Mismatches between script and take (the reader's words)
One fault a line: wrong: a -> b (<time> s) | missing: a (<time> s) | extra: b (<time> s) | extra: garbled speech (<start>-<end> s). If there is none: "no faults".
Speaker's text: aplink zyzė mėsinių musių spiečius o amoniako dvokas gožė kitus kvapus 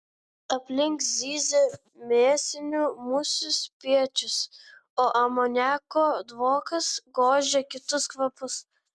no faults